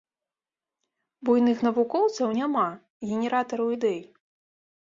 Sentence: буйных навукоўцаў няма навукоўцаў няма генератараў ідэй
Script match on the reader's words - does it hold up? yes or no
no